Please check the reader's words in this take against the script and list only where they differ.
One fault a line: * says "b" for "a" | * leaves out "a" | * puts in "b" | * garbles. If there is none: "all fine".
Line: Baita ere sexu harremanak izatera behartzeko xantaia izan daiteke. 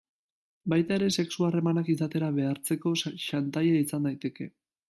all fine